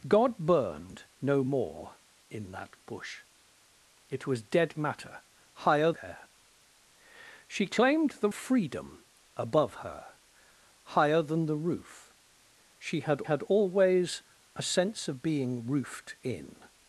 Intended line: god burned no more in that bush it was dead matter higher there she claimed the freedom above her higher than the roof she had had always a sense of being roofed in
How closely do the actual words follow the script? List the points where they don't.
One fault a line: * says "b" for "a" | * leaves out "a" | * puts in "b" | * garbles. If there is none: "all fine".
all fine